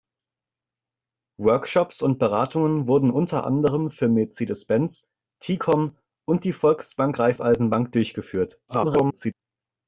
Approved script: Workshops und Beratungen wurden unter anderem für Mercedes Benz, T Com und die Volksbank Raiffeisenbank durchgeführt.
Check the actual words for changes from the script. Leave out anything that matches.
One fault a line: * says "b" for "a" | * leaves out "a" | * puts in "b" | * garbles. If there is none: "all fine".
* garbles